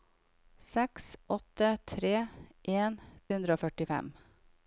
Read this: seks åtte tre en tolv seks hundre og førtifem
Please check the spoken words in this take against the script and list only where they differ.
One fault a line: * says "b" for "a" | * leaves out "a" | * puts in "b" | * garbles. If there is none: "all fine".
* leaves out "tolv seks"